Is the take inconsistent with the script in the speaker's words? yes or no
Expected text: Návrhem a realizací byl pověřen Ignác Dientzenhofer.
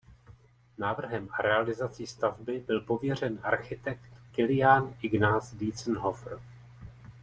yes